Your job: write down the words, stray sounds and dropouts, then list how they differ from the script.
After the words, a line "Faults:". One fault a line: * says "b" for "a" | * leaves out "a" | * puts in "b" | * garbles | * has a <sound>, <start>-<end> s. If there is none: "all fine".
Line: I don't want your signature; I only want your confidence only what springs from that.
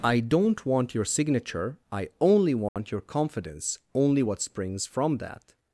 I don't want your signature; I only want your confidence only what springs from that.
Faults:
* has a dropout, 2.7-2.8 s